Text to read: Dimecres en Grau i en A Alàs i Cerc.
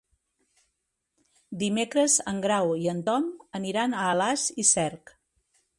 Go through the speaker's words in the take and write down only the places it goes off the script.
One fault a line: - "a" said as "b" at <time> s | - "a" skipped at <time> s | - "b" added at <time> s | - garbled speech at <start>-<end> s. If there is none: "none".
- "Tom aniran" added at 3.1 s